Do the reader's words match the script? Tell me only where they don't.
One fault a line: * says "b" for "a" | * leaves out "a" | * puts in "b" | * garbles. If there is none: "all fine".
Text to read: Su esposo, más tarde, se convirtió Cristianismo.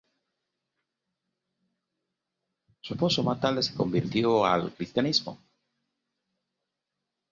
* puts in "al"